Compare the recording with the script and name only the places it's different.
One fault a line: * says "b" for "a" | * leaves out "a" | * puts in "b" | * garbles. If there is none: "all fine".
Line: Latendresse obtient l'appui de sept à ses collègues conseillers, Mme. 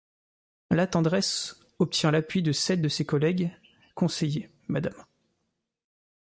* says "de" for "à"